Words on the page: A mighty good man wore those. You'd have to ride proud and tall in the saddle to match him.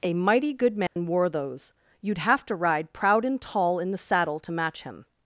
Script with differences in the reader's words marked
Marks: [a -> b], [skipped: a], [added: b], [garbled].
A mighty good man wore those. You'd have to ride proud and tall in the saddle to match him.